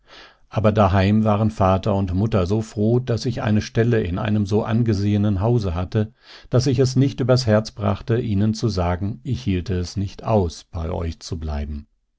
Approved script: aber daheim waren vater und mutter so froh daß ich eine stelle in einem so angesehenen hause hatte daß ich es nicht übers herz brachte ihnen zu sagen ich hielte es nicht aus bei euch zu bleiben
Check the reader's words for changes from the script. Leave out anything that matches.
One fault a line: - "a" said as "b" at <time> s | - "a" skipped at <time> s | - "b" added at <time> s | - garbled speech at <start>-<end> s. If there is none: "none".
none